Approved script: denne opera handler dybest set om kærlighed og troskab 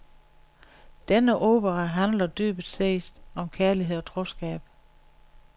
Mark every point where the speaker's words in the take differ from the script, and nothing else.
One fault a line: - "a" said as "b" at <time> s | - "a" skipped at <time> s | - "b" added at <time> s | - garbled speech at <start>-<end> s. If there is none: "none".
none